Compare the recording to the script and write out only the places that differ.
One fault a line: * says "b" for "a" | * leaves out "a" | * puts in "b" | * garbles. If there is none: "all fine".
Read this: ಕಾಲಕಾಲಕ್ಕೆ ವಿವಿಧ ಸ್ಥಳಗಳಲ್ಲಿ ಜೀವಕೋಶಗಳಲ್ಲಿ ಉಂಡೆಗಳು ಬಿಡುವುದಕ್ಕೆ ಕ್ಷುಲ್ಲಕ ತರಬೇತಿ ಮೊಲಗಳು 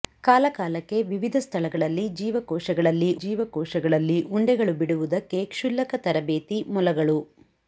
* puts in "ಜೀವಕೋಶಗಳಲ್ಲಿ"